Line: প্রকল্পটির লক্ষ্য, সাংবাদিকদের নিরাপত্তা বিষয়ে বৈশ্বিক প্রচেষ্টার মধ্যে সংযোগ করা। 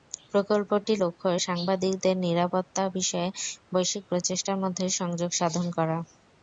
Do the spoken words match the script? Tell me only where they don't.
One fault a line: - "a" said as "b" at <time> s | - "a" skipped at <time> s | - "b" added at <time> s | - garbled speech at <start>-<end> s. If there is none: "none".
- "সাধন" added at 5.3 s